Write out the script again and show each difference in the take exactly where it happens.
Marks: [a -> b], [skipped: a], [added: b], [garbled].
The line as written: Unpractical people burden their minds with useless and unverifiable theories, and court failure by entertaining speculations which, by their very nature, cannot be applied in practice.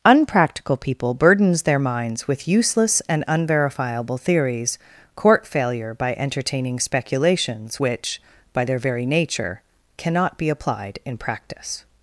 Unpractical people [burden -> burdens] their minds with useless and unverifiable theories, [skipped: and] court failure by entertaining speculations which, by their very nature, cannot be applied in practice.